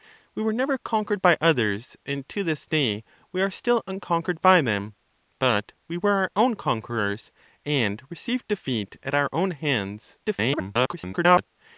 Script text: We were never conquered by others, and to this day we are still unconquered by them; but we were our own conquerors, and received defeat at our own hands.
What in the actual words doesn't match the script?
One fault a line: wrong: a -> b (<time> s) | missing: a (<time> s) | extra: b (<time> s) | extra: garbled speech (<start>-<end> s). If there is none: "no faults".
extra: garbled speech (10.2-11.5 s)